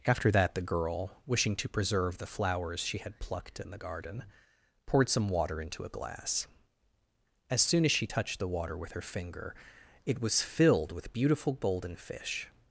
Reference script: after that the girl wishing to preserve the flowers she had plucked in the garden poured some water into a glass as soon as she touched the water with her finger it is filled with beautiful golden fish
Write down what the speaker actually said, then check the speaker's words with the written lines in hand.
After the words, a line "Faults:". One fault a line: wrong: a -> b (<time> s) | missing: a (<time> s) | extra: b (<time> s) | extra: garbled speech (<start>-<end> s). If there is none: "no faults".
after that the girl wishing to preserve the flowers she had plucked in the garden poured some water into a glass as soon as she touched the water with her finger it was filled with beautiful golden fish
Faults:
wrong: is -> was (10.2 s)